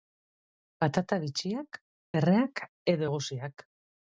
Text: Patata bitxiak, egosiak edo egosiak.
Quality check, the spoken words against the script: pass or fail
fail